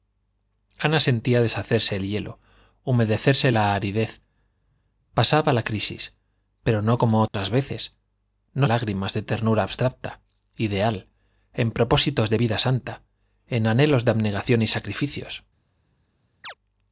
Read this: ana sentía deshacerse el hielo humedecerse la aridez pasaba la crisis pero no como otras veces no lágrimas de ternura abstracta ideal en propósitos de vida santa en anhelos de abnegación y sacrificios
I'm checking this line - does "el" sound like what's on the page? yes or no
yes